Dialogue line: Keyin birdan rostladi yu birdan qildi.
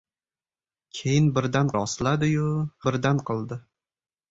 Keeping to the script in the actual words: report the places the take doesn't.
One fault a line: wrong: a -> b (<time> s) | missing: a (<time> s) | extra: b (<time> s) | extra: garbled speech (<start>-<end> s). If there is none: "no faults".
no faults